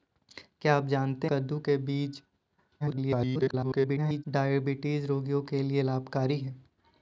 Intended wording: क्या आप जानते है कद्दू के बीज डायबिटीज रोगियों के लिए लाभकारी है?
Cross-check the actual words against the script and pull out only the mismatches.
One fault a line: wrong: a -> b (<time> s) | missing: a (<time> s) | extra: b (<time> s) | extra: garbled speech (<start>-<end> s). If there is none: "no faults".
missing: है (1.3 s)
extra: garbled speech (2.8-4.2 s)